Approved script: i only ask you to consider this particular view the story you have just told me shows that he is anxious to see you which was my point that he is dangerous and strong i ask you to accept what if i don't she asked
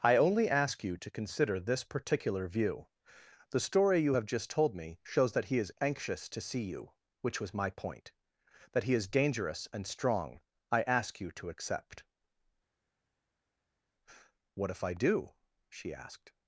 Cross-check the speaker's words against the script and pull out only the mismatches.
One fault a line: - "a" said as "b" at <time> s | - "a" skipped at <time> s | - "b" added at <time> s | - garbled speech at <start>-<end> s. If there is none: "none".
- "don't" said as "do" at 14.9 s